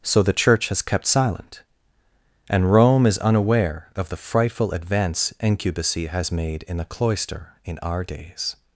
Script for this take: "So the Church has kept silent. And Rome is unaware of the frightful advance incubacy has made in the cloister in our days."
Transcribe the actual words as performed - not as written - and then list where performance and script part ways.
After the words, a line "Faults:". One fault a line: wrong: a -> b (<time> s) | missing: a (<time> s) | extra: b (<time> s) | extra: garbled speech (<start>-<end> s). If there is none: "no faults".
"So the Church has kept silent. And Rome is unaware of the frightful advance incubacy has made in the cloister in our days."
Faults:
no faults